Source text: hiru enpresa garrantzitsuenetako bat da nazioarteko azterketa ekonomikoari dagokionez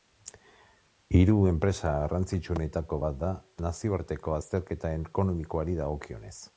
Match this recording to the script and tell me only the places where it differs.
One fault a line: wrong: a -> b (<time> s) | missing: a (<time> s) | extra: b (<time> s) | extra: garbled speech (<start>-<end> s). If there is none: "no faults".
no faults